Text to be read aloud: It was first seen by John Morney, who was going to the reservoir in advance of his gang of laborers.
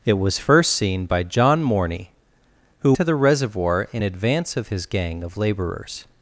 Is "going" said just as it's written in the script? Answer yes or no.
no